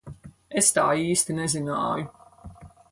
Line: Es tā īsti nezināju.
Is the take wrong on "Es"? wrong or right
right